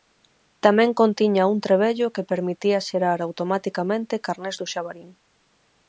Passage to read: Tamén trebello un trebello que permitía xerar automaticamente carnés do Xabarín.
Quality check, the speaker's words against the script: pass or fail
fail